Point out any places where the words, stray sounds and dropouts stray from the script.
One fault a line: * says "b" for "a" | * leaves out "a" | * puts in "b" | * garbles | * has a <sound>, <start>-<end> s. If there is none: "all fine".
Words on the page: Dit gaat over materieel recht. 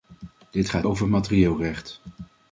all fine